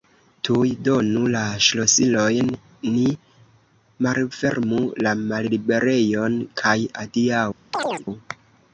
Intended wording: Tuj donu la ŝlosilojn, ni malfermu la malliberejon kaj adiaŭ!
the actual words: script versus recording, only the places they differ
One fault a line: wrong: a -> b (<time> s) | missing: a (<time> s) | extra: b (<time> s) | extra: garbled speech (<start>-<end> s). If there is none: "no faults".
no faults